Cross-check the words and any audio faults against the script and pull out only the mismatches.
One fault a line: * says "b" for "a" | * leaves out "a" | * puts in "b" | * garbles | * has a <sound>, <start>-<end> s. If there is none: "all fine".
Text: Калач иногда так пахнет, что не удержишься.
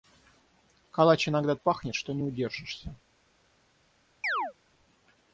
* leaves out "так"
* has a chirp, 4.2-4.5 s